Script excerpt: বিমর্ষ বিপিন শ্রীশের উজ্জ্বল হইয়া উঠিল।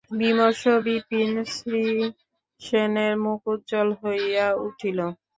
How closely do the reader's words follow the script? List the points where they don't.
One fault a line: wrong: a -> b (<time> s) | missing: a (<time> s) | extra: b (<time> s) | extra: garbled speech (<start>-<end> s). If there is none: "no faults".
extra: মুখ (3.2 s)